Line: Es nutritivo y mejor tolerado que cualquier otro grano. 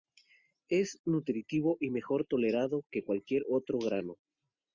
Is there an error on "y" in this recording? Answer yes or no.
no